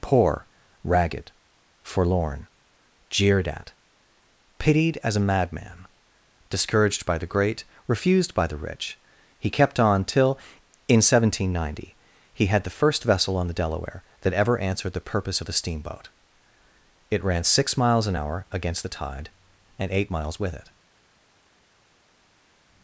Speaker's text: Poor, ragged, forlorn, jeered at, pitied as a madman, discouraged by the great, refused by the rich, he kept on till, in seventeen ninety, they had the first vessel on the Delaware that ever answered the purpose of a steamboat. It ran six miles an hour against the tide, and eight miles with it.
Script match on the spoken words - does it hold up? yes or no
no